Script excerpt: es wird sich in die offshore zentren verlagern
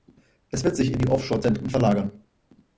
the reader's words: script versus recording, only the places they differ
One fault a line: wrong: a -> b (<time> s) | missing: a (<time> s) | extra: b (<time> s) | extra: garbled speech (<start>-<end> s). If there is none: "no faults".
no faults